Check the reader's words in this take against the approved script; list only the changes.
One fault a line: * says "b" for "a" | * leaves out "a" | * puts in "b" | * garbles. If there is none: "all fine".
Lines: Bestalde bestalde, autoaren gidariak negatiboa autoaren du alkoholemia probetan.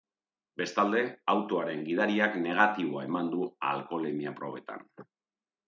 * leaves out "bestalde"
* says "eman" for "autoaren"